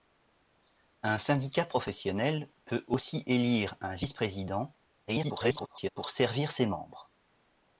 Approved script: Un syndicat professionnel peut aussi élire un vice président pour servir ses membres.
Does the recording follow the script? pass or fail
fail